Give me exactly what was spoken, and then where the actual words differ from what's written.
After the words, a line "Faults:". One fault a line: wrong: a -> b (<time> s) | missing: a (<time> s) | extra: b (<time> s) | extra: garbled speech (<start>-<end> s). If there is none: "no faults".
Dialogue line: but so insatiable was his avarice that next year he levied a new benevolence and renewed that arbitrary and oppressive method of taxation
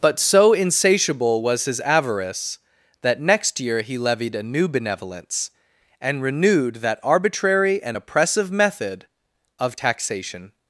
but so insatiable was his avarice that next year he levied a new benevolence and renewed that arbitrary and oppressive method of taxation
Faults:
no faults